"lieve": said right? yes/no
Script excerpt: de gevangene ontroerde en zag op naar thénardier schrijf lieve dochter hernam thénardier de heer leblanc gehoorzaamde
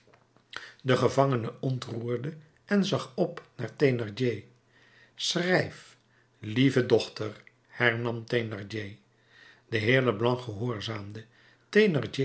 yes